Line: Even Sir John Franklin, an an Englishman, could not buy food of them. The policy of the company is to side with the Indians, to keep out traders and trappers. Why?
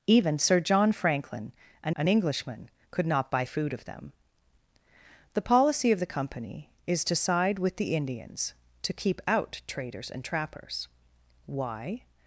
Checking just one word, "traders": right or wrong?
right